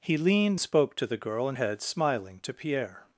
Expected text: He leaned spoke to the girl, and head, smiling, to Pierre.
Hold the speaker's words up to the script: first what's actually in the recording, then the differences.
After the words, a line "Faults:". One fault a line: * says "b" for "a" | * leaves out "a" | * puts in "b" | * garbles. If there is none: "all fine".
He leaned spoke to the girl, and head, smiling, to Pierre.
Faults:
all fine